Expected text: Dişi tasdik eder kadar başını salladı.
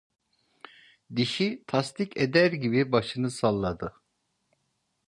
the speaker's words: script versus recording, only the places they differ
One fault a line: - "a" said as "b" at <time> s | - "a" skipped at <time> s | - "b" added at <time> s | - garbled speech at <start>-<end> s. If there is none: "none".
- "kadar" said as "gibi" at 2.5 s